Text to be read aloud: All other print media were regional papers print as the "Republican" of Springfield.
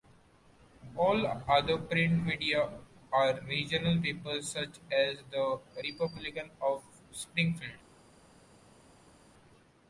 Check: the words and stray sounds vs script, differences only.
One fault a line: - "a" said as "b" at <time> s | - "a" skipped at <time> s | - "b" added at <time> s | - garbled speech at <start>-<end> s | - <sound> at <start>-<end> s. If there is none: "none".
- "were" said as "are" at 3.1 s
- "print" said as "such" at 4.5 s